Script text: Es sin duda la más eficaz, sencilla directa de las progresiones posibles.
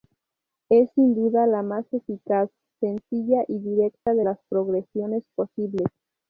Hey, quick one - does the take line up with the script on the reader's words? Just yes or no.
no